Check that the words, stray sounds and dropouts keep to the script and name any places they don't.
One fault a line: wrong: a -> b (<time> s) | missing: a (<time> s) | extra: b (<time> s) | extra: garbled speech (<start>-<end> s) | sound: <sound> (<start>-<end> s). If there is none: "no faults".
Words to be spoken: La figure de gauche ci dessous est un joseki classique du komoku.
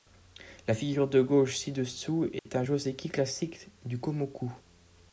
sound: dropout (2.4-2.5 s)